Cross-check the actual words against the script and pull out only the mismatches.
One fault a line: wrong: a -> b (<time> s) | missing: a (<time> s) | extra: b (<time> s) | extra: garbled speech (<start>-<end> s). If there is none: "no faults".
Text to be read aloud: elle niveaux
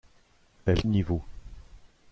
no faults